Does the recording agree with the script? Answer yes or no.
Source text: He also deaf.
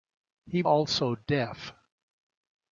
yes